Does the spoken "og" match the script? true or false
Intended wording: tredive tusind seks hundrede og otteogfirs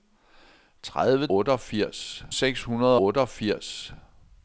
false